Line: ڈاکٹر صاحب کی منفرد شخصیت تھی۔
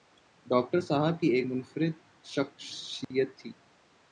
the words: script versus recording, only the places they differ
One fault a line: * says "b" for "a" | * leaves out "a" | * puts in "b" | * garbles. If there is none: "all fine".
* puts in "ایک"